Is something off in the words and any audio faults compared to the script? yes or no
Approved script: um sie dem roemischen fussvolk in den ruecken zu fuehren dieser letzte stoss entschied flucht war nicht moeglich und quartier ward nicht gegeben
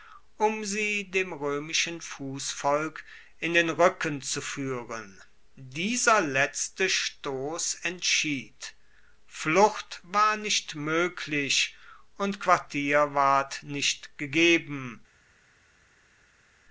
no